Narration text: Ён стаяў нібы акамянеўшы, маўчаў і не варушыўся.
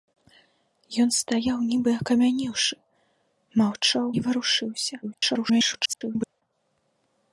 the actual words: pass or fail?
fail